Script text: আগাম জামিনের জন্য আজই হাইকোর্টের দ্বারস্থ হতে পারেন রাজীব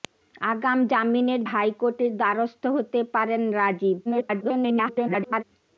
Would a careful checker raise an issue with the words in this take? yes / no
yes